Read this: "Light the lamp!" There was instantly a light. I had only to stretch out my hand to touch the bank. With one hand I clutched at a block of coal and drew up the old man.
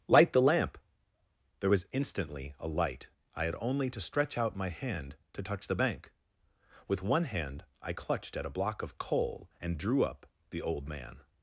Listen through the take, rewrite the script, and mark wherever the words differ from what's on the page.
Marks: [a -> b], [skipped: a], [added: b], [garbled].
"Light the lamp!" There was instantly a light. I had only to stretch out my hand to touch the bank. With one hand I clutched at a block of coal and drew up the old man.